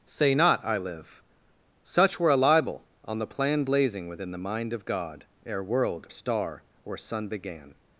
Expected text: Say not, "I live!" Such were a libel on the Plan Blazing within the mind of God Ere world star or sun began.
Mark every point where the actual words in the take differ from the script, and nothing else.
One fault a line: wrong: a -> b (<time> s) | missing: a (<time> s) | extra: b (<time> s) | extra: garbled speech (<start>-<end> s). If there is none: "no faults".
no faults